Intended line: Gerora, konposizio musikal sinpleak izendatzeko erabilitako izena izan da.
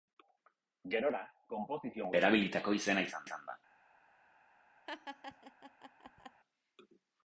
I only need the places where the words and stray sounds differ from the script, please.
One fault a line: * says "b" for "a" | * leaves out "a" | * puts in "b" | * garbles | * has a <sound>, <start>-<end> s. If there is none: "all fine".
* leaves out "musikal sinpleak izendatzeko"
* puts in "izan"
* has a laugh, 4.9-6.4 s